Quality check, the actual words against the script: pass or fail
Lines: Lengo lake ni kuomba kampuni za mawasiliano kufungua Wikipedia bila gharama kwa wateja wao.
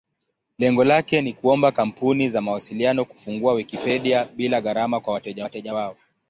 fail